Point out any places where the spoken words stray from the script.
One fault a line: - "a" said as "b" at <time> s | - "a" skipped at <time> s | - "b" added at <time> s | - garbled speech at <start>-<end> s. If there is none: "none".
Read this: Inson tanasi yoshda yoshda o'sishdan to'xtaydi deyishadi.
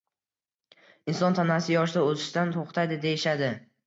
- "yoshda" skipped at 2.0 s